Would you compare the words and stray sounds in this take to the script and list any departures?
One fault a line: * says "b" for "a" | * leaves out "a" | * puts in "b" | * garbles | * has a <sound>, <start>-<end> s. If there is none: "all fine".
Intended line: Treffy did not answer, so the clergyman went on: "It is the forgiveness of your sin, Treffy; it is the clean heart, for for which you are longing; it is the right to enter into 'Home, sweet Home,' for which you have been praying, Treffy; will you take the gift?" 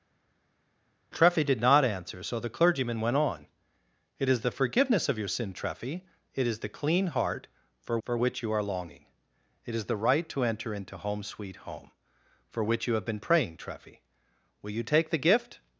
all fine